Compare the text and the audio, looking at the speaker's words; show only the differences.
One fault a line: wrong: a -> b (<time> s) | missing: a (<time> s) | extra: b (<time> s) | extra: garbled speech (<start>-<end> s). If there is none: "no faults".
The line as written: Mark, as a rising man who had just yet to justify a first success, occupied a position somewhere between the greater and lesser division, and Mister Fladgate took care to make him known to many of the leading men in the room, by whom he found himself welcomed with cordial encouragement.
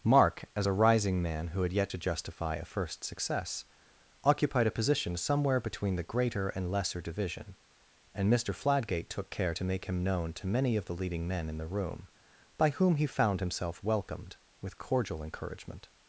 missing: just (1.7 s)